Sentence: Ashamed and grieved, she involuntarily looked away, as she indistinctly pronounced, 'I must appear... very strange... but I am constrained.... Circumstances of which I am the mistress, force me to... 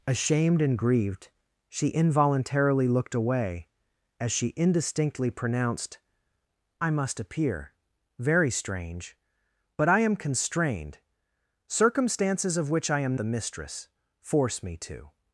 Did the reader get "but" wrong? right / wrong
right